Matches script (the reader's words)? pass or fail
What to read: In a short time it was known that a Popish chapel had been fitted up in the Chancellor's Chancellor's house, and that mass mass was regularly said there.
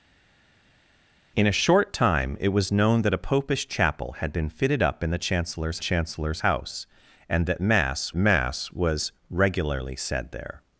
pass